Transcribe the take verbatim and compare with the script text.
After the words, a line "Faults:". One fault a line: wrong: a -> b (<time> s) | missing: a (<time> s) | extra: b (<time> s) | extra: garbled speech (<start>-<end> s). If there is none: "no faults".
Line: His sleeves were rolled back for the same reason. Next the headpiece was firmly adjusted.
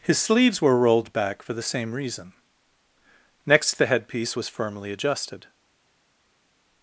His sleeves were rolled back for the same reason. Next the headpiece was firmly adjusted.
Faults:
no faults